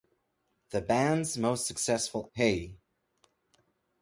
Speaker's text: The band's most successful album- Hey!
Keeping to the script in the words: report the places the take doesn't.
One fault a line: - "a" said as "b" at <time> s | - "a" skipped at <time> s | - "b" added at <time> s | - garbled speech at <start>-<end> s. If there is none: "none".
- "album" skipped at 2.3 s